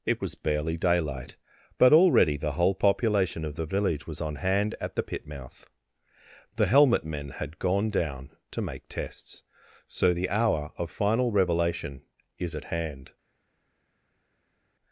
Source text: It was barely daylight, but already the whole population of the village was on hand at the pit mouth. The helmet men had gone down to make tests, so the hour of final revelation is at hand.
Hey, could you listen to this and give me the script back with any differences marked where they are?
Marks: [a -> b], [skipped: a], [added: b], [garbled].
It was barely daylight, but already the whole population of the village was on hand at the pit mouth. The helmet men had gone down to make tests, so the hour of final revelation is at hand.